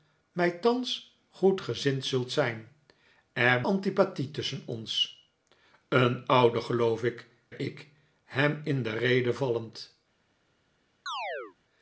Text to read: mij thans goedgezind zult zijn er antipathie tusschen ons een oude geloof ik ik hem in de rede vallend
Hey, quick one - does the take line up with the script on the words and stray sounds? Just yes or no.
no